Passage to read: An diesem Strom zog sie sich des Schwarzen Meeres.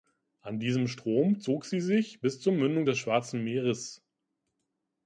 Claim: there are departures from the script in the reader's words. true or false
true